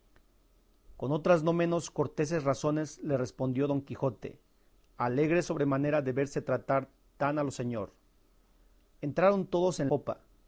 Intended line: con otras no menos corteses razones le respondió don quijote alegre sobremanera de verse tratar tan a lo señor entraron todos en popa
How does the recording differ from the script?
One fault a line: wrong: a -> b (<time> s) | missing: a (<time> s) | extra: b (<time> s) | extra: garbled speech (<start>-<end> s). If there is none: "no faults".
no faults